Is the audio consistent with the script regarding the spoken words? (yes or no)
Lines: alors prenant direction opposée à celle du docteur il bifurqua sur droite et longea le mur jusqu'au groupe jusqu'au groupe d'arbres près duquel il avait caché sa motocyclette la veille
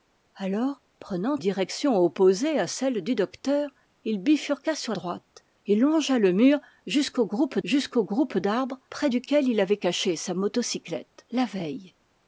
yes